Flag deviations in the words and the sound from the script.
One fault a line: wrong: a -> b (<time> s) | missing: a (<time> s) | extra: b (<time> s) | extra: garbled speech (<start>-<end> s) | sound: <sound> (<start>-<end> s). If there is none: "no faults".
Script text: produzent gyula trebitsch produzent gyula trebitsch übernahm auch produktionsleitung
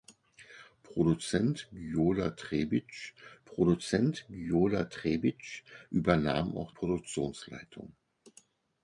no faults